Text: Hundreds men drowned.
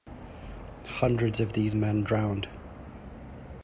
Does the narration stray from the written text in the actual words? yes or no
yes